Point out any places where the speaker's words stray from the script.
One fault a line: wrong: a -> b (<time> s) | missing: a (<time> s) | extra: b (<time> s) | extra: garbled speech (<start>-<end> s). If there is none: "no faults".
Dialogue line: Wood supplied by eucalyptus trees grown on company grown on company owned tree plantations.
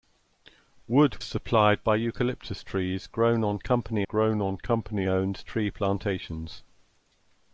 no faults